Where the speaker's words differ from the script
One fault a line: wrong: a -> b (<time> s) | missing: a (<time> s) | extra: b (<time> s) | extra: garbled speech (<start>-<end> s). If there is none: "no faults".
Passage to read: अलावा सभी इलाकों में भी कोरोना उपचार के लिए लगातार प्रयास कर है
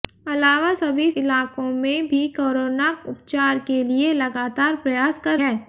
no faults